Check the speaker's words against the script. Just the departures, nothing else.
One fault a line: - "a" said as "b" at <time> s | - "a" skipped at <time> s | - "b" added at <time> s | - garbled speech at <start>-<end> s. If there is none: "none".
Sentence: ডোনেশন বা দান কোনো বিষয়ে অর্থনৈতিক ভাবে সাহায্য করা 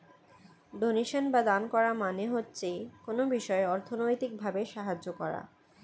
- "করা মানে হচ্ছে" added at 1.7 s